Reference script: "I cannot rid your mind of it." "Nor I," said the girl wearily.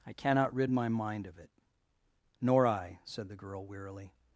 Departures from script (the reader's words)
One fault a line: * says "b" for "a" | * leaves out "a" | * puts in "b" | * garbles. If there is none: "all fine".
* says "my" for "your"